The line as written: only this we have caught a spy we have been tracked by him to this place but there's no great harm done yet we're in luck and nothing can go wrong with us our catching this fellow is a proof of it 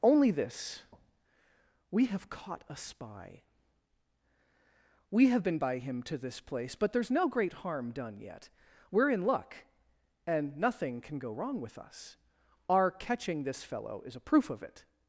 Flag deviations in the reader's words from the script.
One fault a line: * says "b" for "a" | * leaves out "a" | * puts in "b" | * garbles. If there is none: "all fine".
* leaves out "tracked"